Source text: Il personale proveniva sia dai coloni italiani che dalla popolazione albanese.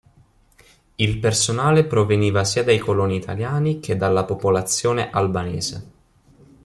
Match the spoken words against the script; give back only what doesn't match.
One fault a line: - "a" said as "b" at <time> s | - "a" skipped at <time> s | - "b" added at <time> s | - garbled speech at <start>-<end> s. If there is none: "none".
none